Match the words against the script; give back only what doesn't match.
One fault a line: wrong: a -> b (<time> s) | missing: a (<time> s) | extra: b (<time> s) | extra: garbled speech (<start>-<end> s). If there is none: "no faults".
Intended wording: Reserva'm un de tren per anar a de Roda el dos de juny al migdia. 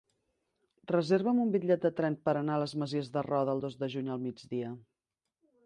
extra: bitllet (1.6 s)
extra: les Masies (2.6 s)